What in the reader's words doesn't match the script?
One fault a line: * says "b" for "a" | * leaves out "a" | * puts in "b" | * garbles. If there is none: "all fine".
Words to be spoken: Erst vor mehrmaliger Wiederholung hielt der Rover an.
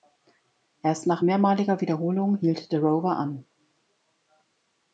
* says "nach" for "vor"